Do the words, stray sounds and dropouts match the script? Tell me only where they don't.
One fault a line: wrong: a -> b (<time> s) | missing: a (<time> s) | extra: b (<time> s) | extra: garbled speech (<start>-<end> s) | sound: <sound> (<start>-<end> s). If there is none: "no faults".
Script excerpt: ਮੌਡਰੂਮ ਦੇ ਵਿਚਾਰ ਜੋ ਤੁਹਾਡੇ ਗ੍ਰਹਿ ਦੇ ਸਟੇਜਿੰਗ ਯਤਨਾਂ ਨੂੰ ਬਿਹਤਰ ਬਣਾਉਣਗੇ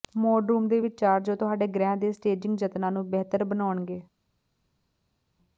no faults